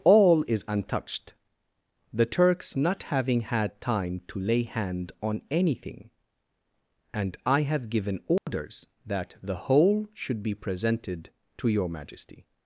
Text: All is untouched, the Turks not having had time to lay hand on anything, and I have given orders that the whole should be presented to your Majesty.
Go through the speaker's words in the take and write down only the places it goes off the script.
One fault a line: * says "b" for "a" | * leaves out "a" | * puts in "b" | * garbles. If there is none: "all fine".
all fine